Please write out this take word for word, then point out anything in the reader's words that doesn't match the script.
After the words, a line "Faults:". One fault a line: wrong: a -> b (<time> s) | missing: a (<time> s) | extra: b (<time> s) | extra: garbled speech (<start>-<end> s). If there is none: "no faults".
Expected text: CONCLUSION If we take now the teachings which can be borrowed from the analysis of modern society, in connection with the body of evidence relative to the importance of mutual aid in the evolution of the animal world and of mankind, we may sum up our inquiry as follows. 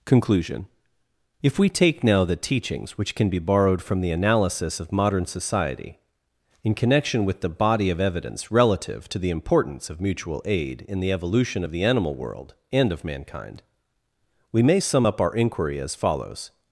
CONCLUSION If we take now the teachings which can be borrowed from the analysis of modern society, in connection with the body of evidence relative to the importance of mutual aid in the evolution of the animal world and of mankind, we may sum up our inquiry as follows.
Faults:
no faults